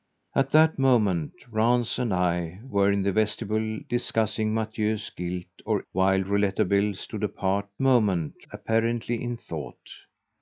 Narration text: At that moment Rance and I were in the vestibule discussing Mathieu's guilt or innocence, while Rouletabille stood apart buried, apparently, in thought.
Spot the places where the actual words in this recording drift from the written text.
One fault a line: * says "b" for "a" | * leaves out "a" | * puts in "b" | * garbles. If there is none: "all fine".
* leaves out "innocence"
* says "moment" for "buried"